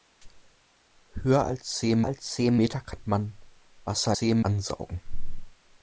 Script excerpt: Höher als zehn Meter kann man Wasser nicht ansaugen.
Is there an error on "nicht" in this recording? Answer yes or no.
yes